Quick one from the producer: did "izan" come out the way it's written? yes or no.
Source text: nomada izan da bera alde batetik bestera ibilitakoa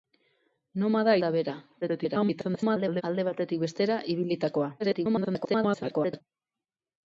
no